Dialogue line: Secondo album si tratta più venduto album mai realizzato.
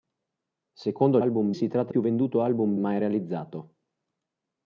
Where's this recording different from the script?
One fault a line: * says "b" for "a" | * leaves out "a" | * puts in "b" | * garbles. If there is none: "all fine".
all fine